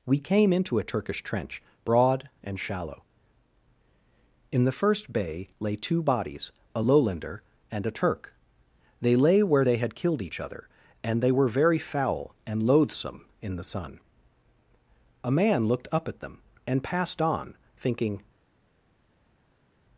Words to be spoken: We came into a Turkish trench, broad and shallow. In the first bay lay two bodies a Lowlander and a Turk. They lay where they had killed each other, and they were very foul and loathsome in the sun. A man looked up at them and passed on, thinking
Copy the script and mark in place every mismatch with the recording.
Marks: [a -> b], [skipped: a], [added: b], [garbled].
We came into a Turkish trench, broad and shallow. In the first bay lay two bodies a Lowlander and a Turk. They lay where they had killed each other, and they were very foul and loathsome in the sun. A man looked up at them and passed on, thinking